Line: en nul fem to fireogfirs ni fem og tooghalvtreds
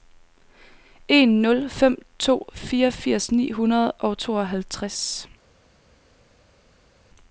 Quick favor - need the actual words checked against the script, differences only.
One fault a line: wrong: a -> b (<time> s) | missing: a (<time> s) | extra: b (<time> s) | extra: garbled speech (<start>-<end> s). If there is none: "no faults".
wrong: fem -> hundrede (3.5 s)